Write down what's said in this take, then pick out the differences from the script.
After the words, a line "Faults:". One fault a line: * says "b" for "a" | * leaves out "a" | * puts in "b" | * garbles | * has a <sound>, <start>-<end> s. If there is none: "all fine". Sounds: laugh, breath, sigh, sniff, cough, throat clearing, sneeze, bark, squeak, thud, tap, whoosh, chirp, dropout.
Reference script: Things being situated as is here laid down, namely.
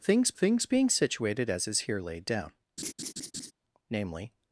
Things things being situated as is here laid down, namely.
Faults:
* puts in "things"
* has a laugh, 2.8-3.5 s